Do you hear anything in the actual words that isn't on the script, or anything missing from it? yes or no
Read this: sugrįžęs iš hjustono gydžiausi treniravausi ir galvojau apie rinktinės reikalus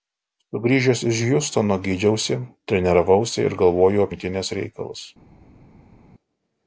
yes